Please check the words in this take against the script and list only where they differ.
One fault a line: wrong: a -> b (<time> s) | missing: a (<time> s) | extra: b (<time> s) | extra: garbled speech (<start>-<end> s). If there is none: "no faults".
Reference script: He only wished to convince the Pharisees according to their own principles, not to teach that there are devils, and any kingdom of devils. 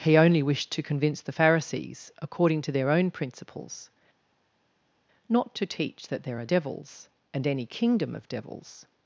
no faults